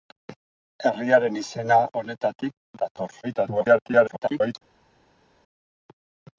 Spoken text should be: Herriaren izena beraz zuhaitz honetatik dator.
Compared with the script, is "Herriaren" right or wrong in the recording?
right